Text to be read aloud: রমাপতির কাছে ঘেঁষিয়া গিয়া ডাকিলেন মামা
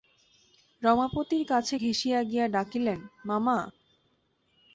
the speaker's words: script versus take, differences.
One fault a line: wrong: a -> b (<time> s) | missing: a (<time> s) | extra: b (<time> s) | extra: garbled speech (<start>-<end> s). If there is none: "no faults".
no faults